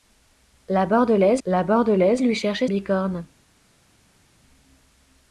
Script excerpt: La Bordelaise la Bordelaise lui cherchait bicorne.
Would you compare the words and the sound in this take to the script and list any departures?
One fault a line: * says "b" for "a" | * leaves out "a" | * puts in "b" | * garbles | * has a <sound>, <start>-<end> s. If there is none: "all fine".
all fine